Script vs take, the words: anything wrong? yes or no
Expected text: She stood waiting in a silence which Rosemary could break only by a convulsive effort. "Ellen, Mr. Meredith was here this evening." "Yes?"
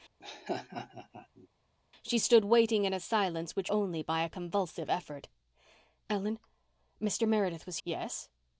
yes